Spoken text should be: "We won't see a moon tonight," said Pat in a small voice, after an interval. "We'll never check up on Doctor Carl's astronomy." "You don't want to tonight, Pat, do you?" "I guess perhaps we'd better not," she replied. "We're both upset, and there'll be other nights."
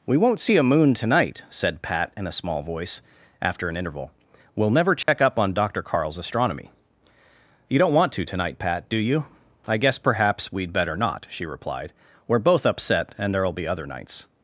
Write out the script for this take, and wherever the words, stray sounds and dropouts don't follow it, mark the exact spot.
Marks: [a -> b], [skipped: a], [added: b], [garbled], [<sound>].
"We won't see a moon tonight," said Pat in a small voice, after an interval. "We'll never check [dropout] up on Doctor Carl's astronomy." "You don't want to tonight, Pat, do you?" "I guess perhaps we'd better not," she replied. "We're both upset, and there'll be other nights."